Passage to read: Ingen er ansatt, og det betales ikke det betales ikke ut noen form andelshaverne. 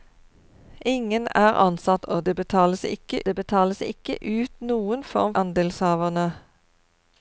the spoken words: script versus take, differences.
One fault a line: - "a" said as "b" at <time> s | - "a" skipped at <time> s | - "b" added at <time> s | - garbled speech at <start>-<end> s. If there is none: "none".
none